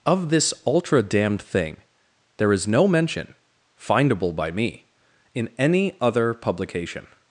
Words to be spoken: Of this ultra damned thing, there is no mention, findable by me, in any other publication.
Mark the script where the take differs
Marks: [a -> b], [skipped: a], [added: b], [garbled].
Of this ultra damned thing, there is no mention, findable by me, in any other publication.